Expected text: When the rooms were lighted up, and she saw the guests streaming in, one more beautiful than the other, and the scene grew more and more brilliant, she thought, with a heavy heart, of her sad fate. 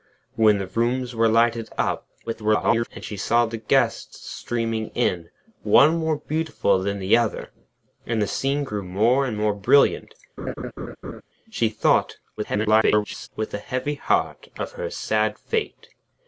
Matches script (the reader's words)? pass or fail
fail